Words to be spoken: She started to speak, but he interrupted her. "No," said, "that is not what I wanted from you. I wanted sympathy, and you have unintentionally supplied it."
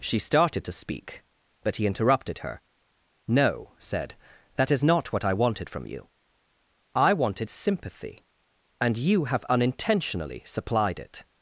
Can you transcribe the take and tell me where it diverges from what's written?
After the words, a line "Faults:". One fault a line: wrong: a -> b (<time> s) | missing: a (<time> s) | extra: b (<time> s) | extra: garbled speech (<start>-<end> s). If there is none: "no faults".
She started to speak, but he interrupted her. "No," said, "that is not what I wanted from you. I wanted sympathy, and you have unintentionally supplied it."
Faults:
no faults